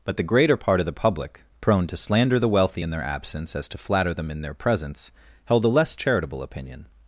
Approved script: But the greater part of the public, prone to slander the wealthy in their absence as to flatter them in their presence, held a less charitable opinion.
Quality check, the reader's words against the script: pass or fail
pass